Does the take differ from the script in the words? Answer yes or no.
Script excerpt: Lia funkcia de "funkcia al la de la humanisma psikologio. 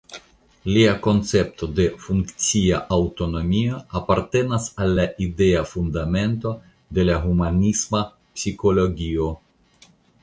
yes